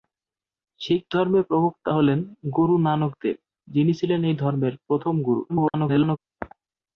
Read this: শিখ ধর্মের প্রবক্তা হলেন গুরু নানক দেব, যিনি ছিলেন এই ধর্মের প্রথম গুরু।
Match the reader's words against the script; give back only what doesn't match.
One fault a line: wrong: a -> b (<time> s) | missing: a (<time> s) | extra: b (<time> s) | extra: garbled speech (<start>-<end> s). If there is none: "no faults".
extra: garbled speech (5.5-6.2 s)